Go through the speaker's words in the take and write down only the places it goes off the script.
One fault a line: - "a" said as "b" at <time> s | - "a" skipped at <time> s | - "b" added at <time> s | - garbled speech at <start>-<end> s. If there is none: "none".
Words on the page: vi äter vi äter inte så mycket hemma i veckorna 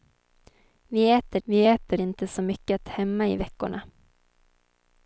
none